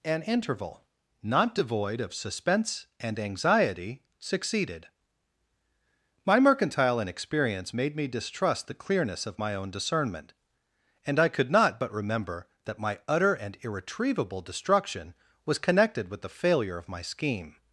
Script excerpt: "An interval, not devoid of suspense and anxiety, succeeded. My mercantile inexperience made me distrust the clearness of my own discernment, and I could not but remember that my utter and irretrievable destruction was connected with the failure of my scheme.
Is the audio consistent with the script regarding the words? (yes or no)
yes